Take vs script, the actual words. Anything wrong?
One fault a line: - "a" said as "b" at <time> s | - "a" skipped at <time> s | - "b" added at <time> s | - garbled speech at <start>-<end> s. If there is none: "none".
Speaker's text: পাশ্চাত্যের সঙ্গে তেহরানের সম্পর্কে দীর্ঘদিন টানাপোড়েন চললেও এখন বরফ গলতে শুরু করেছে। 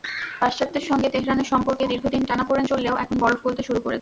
none